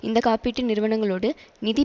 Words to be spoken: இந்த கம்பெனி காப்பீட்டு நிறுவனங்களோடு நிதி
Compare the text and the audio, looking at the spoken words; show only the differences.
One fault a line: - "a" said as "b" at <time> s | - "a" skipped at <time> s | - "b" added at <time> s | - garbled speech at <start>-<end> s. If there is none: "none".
- "கம்பெனி" skipped at 0.2 s